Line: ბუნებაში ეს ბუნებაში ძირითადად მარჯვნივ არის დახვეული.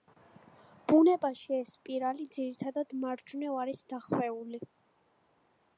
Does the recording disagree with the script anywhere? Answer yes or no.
yes